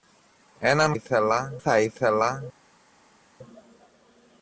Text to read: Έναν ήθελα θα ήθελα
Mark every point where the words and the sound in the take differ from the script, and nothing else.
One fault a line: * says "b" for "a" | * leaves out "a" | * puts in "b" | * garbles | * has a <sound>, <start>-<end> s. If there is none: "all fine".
all fine